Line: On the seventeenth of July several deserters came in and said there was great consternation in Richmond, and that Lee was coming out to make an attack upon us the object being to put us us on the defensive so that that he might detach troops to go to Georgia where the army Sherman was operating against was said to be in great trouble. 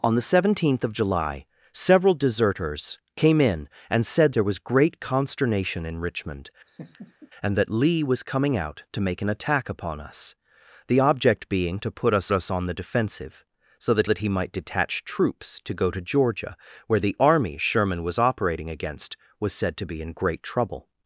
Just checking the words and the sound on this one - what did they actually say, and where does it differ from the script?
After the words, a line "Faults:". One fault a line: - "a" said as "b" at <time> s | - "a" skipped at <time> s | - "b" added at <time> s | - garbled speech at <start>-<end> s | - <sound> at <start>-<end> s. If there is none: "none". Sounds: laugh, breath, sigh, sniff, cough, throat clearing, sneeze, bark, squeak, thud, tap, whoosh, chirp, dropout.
On the seventeenth of July several deserters came in and said there was great consternation in Richmond, and that Lee was coming out to make an attack upon us the object being to put us us on the defensive so that that he might detach troops to go to Georgia where the army Sherman was operating against was said to be in great trouble.
Faults:
- laugh at 6.7-7.3 s